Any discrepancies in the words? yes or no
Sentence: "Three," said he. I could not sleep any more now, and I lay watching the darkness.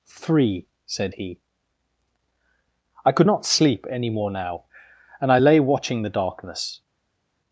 no